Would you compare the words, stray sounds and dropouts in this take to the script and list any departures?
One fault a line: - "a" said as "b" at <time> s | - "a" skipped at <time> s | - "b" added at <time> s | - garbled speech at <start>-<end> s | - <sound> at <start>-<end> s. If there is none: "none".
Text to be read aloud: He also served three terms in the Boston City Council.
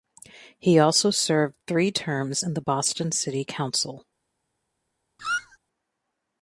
- squeak at 5.2-5.6 s